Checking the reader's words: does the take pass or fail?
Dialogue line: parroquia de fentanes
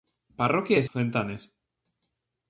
pass